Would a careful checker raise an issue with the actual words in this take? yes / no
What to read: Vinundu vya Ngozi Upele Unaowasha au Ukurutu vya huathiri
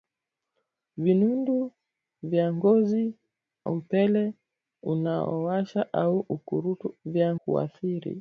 no